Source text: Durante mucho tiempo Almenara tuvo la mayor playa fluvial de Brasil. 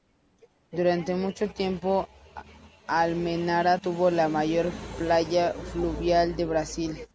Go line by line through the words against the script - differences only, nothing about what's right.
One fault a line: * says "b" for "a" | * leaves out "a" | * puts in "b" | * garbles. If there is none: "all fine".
all fine